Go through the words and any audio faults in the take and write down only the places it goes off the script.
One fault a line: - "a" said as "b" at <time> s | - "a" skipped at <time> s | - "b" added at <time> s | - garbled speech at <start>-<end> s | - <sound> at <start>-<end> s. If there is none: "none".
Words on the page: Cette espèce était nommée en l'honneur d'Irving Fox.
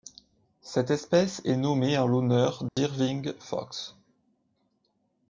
- "était" said as "est" at 1.4 s
- dropout at 2.7-2.8 s